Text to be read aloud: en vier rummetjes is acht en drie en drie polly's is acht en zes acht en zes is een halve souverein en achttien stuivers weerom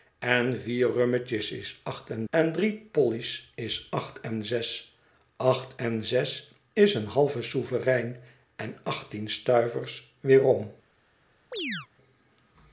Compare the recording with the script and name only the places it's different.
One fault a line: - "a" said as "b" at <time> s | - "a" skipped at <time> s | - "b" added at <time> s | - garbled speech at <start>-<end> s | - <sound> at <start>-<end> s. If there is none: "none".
- "drie" skipped at 2.3 s
- chirp at 11.5-11.9 s